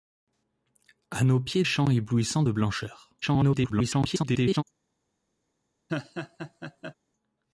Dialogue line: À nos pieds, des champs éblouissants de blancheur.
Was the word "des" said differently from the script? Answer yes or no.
yes